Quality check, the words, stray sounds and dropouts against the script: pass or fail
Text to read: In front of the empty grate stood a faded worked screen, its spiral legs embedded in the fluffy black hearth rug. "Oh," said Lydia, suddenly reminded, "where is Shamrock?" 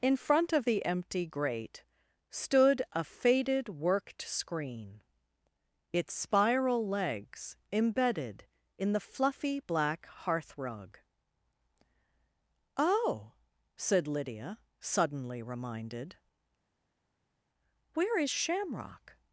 pass